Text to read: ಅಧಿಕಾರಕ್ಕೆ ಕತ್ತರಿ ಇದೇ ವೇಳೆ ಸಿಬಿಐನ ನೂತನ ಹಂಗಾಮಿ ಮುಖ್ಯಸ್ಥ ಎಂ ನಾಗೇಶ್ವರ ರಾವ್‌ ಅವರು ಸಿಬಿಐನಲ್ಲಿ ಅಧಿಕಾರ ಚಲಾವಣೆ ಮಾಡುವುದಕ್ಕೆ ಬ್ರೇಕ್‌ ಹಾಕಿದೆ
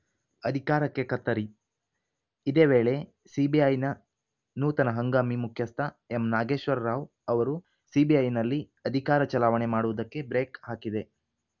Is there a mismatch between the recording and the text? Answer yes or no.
no